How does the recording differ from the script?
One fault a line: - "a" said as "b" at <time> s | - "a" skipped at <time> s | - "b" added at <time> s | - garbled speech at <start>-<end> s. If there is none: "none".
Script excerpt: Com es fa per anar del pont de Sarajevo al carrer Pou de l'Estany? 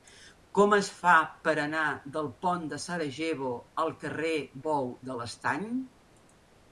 none